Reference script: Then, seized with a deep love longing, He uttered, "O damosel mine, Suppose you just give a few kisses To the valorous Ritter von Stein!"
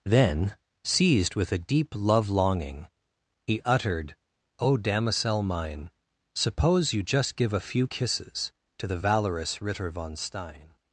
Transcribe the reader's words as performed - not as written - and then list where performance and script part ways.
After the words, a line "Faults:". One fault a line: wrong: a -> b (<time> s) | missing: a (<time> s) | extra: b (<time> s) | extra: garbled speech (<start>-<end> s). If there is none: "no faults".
Then, seized with a deep love longing, He uttered, "O damosel mine, Suppose you just give a few kisses To the valorous Ritter von Stein!"
Faults:
no faults